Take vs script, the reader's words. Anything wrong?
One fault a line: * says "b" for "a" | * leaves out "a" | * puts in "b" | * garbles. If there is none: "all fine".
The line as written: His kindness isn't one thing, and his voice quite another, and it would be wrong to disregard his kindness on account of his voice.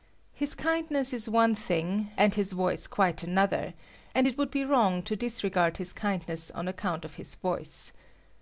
* says "is" for "isn't"